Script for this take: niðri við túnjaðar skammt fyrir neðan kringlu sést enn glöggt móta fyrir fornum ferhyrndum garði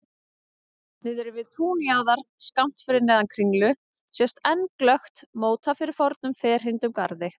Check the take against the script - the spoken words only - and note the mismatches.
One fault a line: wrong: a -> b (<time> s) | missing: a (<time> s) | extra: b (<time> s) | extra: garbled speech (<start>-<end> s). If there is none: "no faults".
no faults